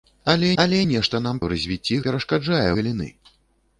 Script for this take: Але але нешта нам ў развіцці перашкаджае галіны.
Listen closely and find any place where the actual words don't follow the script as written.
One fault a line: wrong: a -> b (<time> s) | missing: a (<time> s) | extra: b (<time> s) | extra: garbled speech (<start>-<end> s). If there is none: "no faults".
no faults